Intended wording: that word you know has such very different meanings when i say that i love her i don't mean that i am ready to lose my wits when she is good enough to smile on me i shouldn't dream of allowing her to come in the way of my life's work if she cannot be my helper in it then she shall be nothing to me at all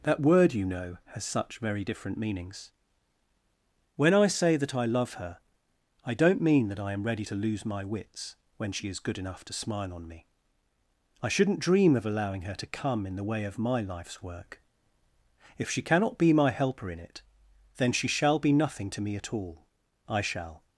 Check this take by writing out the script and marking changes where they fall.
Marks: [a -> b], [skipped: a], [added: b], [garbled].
that word you know has such very different meanings when i say that i love her i don't mean that i am ready to lose my wits when she is good enough to smile on me i shouldn't dream of allowing her to come in the way of my life's work if she cannot be my helper in it then she shall be nothing to me at all [added: i shall]